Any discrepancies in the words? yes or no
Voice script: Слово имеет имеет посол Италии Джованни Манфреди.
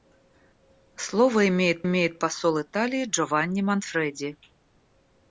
no